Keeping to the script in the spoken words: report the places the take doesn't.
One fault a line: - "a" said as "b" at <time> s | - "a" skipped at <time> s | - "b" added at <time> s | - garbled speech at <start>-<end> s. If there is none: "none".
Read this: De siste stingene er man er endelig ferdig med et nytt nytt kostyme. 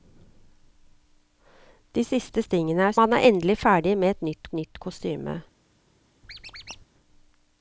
none